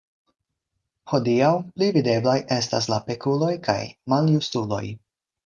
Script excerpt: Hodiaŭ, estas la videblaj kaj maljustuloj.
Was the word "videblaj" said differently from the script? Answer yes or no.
yes